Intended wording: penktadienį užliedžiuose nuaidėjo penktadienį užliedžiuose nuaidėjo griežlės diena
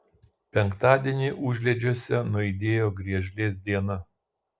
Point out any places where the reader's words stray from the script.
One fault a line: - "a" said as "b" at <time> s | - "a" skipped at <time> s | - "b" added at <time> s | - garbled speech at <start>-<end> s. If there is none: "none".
- "penktadienį užliedžiuose nuaidėjo" skipped at 2.9 s